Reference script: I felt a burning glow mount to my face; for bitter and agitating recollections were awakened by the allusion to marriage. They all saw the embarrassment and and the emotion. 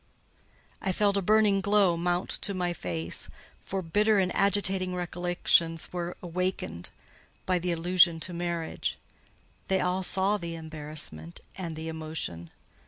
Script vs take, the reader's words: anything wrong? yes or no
yes